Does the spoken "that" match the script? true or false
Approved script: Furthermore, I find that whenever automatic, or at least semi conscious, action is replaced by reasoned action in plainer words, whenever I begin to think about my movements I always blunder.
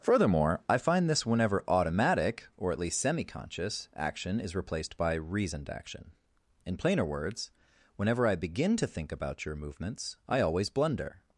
false